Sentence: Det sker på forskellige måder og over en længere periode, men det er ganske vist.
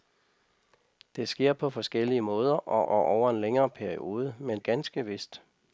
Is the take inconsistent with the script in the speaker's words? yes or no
yes